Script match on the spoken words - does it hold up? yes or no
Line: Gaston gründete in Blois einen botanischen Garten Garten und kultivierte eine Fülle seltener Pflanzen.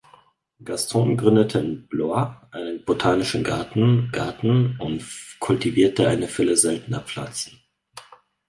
yes